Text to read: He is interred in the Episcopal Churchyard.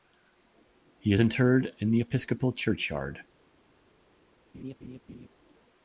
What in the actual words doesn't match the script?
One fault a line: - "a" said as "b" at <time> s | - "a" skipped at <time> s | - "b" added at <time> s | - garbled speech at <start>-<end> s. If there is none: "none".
none